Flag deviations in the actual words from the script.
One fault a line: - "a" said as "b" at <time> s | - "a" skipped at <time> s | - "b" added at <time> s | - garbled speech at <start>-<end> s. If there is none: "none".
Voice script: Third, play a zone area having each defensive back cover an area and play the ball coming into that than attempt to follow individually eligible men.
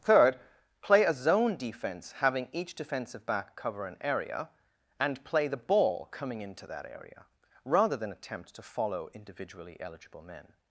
- "area" said as "defense" at 1.6 s
- "area rather" added at 6.8 s